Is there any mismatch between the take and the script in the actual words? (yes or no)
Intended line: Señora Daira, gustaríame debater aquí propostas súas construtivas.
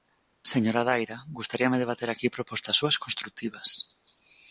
no